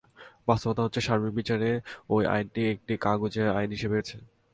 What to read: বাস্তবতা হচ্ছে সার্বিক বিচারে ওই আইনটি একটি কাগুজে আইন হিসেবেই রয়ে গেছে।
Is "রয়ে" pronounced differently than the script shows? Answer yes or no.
yes